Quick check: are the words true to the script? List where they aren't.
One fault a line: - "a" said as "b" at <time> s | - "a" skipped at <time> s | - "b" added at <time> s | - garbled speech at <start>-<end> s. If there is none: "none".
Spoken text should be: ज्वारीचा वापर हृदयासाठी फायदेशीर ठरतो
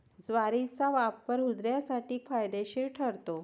none